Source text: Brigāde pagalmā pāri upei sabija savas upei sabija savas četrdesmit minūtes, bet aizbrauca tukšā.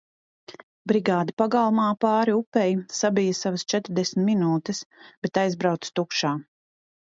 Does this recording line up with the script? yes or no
no